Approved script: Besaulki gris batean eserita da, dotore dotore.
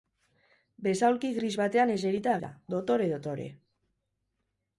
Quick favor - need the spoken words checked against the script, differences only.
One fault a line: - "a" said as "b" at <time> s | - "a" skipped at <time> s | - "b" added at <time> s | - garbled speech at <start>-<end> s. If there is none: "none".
none